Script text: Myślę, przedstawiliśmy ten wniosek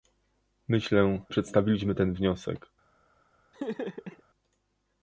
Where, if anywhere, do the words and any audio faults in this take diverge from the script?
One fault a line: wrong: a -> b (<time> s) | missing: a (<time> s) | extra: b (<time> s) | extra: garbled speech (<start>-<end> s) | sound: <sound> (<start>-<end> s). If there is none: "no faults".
sound: laugh (3.5-4.2 s)